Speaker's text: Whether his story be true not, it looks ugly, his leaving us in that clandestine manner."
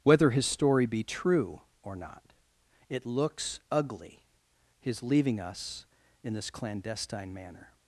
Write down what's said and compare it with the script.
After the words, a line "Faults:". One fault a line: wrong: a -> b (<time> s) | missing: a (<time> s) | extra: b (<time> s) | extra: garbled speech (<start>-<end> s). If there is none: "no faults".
Whether his story be true or not, it looks ugly, his leaving us in this clandestine manner."
Faults:
extra: or (1.8 s)
wrong: that -> this (6.3 s)